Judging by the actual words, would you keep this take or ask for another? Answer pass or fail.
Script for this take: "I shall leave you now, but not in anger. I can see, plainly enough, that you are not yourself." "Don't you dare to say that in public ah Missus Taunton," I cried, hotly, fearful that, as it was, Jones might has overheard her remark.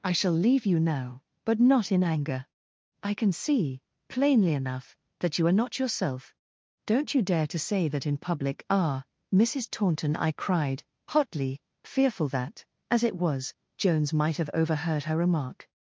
fail